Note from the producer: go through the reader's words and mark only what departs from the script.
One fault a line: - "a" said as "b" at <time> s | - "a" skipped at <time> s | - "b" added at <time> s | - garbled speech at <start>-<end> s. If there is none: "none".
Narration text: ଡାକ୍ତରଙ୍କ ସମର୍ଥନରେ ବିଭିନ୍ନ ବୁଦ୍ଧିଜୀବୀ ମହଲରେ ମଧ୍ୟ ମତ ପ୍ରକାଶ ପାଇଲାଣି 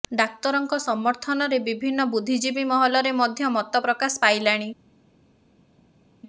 none